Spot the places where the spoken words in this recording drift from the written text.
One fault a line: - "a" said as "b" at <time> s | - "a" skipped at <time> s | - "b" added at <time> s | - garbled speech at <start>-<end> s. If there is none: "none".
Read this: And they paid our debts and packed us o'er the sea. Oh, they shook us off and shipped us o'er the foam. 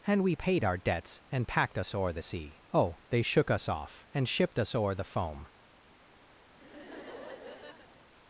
- "they" said as "we" at 0.2 s